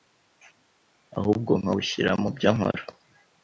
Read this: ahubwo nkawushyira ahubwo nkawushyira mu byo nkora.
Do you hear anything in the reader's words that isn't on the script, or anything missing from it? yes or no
yes